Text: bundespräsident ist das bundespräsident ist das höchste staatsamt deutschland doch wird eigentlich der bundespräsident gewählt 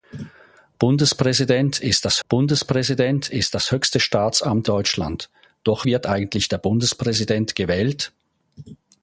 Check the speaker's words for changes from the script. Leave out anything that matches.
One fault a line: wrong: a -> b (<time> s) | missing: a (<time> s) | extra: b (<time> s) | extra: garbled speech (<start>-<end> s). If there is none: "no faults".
no faults